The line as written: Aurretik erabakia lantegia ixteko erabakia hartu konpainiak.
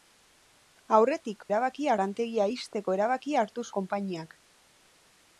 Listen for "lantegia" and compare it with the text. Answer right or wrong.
right